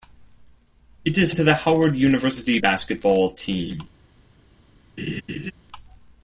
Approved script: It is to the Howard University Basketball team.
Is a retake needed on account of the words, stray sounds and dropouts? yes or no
yes